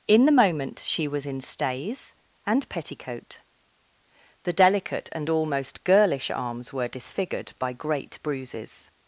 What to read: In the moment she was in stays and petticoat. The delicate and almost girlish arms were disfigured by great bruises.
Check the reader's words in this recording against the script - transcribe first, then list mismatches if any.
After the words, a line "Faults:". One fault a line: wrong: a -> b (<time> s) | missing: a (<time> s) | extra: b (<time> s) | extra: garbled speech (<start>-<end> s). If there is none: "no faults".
In the moment she was in stays and petticoat. The delicate and almost girlish arms were disfigured by great bruises.
Faults:
no faults